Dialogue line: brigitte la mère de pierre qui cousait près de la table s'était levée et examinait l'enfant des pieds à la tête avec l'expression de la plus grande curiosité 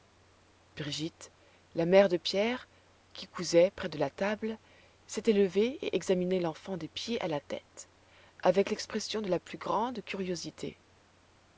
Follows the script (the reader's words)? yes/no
yes